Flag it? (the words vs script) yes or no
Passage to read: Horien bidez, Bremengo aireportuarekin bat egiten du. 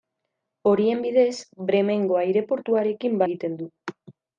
yes